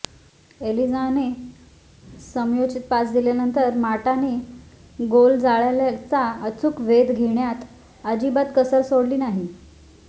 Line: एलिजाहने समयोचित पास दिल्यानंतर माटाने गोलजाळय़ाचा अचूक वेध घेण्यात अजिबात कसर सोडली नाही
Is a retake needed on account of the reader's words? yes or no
no